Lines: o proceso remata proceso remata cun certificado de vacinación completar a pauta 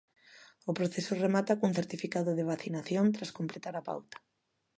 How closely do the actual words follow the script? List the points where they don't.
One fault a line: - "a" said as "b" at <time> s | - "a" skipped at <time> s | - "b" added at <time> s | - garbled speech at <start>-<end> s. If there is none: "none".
- "proceso remata" skipped at 1.6 s
- "tras" added at 3.1 s